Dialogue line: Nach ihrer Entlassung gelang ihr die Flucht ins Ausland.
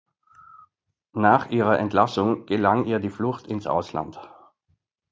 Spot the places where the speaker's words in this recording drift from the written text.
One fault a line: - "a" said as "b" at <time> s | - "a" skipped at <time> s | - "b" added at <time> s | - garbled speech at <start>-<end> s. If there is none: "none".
none